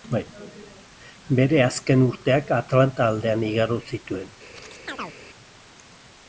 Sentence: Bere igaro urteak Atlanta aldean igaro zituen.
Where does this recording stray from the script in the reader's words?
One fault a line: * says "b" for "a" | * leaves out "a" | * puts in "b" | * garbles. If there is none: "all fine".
* says "azken" for "igaro"